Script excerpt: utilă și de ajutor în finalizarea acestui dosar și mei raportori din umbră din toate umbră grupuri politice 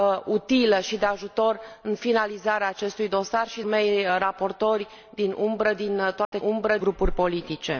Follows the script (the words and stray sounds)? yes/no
no